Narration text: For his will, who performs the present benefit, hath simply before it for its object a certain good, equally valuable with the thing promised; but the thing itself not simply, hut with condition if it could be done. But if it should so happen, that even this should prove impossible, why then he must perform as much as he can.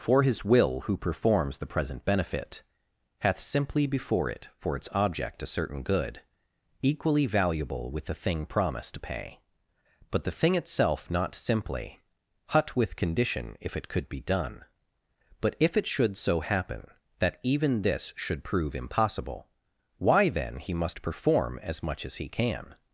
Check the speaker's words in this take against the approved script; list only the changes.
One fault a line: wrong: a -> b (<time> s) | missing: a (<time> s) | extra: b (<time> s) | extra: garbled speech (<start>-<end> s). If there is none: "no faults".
extra: to pay (8.9 s)